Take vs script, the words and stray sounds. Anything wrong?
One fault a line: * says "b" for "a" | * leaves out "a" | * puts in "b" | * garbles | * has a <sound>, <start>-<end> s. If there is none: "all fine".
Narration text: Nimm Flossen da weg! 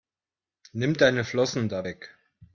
* puts in "deine"